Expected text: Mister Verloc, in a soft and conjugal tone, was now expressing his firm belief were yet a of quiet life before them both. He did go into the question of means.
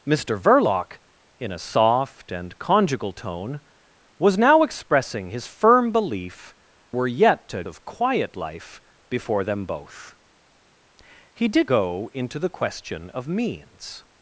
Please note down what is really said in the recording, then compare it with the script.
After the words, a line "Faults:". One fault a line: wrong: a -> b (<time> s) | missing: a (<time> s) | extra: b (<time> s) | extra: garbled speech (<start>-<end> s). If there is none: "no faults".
Mister Verloc, in a soft and conjugal tone, was now expressing his firm belief were yet a of quiet life before them both. He did go into the question of means.
Faults:
no faults